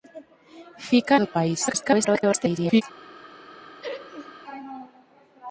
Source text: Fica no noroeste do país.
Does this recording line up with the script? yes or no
no